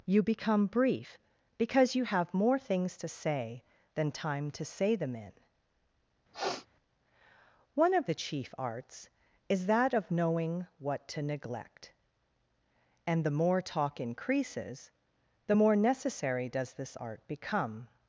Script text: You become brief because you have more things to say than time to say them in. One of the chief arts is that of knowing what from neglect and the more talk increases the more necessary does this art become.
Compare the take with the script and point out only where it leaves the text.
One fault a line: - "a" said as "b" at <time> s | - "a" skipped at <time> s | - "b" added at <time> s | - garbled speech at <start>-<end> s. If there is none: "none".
- "from" said as "to" at 11.1 s